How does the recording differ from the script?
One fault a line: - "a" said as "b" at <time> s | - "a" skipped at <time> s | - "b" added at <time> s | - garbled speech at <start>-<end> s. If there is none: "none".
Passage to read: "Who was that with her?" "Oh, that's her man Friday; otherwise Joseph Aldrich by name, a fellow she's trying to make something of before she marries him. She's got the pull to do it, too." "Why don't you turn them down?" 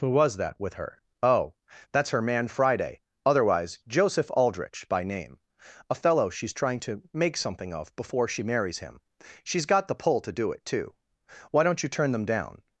none